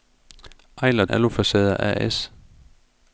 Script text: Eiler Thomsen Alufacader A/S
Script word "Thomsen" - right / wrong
wrong